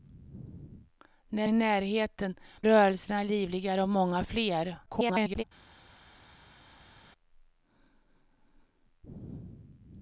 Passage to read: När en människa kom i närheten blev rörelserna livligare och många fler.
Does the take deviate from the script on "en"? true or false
true